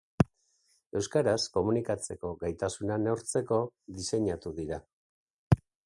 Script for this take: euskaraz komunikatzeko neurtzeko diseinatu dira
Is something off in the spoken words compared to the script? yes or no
yes